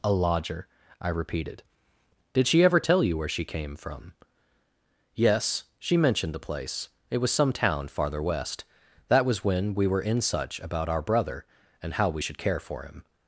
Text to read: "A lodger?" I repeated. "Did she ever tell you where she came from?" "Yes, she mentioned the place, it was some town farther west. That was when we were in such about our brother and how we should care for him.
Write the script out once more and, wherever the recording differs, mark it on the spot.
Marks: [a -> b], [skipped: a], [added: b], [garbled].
"A lodger?" I repeated. "Did she ever tell you where she came from?" "Yes, she mentioned the place, it was some town farther west. That was when we were in such about our brother and how we should care for him.